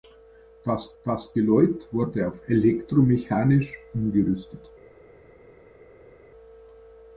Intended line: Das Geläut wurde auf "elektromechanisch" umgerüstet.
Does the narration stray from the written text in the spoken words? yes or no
yes